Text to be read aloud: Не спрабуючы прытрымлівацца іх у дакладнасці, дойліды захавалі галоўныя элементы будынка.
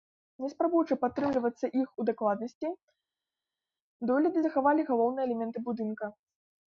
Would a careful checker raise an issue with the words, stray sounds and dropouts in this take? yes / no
no